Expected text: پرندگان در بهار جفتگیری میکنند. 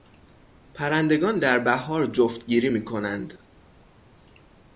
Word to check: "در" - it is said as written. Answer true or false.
true